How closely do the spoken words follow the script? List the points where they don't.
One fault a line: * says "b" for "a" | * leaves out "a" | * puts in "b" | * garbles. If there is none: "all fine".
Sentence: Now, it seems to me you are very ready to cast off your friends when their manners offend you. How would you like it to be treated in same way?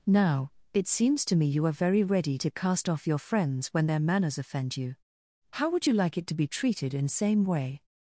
all fine